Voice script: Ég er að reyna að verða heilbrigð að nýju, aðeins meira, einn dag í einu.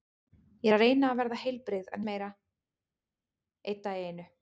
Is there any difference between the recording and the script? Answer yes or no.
yes